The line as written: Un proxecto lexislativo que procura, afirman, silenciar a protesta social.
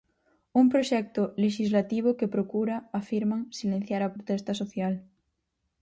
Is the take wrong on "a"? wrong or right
right